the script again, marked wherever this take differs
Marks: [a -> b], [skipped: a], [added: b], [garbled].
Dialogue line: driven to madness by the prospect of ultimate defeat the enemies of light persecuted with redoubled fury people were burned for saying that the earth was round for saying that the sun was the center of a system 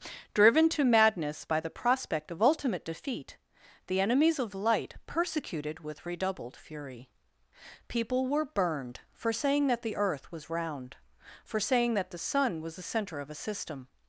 driven to madness by the prospect of ultimate defeat the enemies of light persecuted with redoubled fury people were burned for saying that the earth was round for saying that the sun was the center of a system